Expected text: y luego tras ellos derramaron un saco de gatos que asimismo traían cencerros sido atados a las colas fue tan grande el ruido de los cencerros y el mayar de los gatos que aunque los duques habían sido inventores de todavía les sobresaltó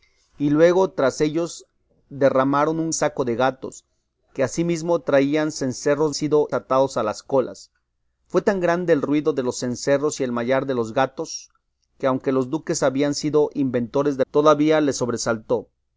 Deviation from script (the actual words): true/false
false